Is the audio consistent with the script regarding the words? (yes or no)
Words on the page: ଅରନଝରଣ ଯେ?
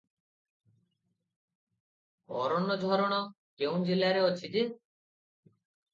no